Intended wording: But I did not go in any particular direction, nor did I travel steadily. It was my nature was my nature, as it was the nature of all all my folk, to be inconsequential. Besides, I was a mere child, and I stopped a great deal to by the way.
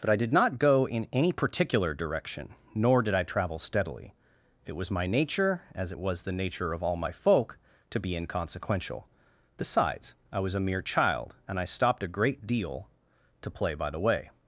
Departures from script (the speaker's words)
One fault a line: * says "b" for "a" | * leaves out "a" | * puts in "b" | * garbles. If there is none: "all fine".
* leaves out "was my nature"
* leaves out "all"
* puts in "play"